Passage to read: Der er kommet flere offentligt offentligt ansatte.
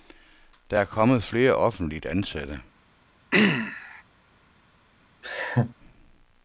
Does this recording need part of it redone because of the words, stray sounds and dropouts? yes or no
yes